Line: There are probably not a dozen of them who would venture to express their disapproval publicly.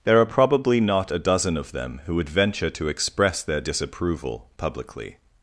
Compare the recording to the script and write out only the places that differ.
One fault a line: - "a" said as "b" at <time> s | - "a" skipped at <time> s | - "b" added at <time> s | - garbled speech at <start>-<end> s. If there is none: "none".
none